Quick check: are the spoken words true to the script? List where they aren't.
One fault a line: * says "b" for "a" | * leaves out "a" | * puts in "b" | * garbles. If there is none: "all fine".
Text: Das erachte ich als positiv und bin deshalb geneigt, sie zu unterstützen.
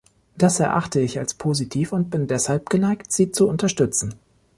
all fine